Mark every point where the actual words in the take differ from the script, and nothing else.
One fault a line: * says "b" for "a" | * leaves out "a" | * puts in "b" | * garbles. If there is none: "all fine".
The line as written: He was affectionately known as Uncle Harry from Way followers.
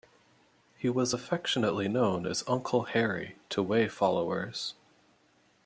* says "to" for "from"